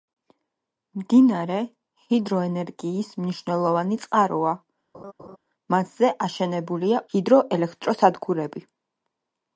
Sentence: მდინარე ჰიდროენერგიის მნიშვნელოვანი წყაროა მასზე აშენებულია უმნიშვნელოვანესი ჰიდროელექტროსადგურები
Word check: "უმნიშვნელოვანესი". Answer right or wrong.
wrong